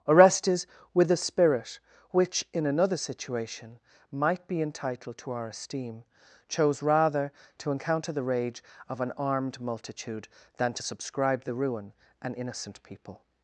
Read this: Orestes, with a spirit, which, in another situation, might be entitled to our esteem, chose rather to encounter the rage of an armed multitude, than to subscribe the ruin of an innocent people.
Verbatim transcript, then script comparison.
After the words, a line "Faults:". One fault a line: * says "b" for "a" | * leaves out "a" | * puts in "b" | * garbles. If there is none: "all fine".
Orestes, with a spirit, which, in another situation, might be entitled to our esteem, chose rather to encounter the rage of an armed multitude, than to subscribe the ruin an innocent people.
Faults:
* leaves out "of"